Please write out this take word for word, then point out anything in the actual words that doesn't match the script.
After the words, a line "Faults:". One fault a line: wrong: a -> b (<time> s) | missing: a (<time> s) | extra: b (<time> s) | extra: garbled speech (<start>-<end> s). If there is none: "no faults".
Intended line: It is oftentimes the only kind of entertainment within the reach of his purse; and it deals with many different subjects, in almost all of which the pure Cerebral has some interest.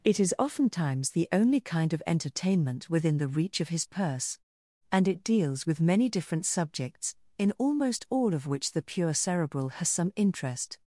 It is oftentimes the only kind of entertainment within the reach of his purse; and it deals with many different subjects, in almost all of which the pure Cerebral has some interest.
Faults:
no faults